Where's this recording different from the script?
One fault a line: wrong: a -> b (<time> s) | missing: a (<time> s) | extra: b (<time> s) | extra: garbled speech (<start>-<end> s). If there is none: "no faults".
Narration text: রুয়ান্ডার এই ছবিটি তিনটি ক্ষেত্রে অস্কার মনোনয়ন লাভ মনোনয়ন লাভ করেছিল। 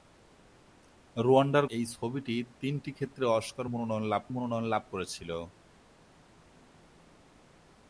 no faults